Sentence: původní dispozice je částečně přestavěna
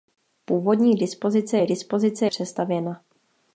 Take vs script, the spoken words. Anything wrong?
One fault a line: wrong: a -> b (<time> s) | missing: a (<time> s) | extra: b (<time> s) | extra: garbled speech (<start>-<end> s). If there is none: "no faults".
wrong: částečně -> dispozice (1.6 s)